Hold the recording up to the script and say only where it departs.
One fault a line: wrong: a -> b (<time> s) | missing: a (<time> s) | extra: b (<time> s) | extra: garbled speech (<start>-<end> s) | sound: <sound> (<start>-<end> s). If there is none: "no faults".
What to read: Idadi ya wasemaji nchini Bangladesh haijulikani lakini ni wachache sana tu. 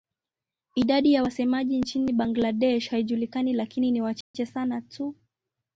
sound: dropout (4.2-4.3 s)